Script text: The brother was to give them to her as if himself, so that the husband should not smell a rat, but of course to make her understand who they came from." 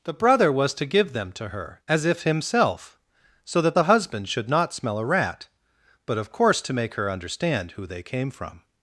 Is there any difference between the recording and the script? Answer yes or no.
no